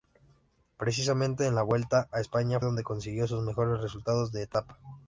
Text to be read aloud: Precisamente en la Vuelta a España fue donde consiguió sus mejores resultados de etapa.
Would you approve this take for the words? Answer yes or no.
no